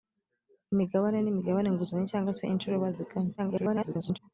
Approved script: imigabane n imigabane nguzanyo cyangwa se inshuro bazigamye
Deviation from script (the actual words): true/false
true